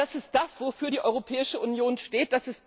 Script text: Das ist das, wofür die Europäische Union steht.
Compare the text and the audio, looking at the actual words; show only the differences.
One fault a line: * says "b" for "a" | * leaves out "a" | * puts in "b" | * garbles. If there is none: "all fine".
all fine